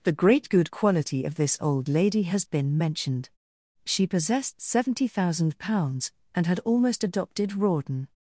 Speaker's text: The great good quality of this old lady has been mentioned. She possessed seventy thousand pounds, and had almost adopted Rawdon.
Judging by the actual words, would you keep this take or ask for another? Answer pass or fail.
pass